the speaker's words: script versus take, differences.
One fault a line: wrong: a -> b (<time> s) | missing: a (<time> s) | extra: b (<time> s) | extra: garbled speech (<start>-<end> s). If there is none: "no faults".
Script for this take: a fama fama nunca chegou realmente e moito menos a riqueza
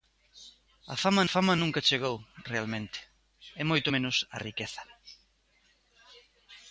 no faults